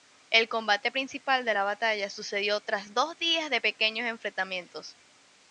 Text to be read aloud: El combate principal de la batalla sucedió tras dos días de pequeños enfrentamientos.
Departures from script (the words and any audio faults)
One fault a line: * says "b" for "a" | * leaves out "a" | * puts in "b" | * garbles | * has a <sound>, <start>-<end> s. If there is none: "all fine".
all fine